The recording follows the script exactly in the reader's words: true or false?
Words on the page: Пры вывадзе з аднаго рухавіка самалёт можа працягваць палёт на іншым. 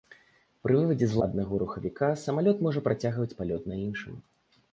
true